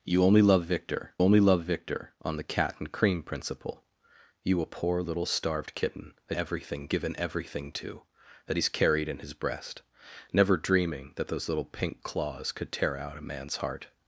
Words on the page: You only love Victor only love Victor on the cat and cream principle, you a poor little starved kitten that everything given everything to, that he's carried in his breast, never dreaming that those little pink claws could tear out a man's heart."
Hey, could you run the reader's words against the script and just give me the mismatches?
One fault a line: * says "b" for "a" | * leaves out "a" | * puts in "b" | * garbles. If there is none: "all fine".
all fine